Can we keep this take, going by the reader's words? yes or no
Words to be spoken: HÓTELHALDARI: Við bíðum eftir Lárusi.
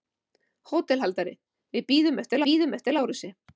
no